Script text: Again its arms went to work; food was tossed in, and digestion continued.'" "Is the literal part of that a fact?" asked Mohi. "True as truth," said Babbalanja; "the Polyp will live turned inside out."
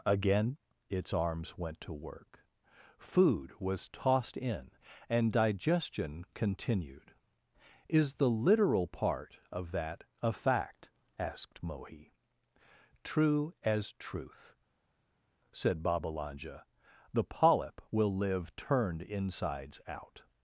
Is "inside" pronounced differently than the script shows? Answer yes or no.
yes